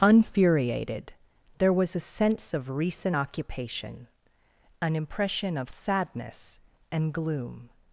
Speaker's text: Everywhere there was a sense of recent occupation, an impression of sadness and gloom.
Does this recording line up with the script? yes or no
no